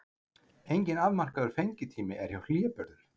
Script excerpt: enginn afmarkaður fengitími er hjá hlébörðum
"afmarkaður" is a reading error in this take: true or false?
false